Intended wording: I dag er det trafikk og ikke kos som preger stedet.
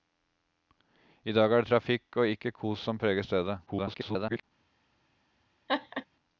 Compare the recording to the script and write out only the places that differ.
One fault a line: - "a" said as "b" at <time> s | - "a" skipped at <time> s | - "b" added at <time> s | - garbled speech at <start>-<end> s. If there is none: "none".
- garbled speech at 3.7-4.4 s